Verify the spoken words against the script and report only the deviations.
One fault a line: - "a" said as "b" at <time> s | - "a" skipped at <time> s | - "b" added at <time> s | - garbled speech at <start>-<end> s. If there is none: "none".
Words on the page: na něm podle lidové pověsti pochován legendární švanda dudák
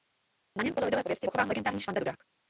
none